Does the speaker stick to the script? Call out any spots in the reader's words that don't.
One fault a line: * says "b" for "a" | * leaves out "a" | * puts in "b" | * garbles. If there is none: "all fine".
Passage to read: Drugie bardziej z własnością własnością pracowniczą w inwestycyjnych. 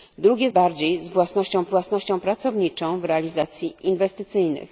all fine